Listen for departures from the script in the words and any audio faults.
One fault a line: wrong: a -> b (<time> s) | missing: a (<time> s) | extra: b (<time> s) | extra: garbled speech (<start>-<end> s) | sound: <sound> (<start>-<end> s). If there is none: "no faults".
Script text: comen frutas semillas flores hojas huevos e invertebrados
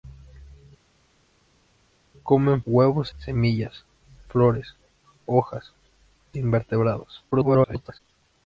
wrong: frutas -> huevos (2.7 s)
missing: huevos (5.7 s)
extra: garbled speech (7.3-8.0 s)